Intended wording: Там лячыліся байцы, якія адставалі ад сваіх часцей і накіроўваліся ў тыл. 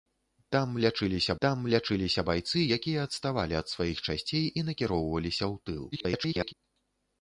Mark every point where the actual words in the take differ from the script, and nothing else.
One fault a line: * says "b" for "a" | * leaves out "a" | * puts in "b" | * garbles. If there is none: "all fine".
* puts in "там лячыліся"
* garbles